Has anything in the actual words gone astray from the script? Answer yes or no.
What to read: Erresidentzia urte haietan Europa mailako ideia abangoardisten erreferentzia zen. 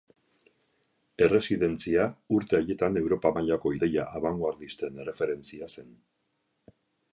no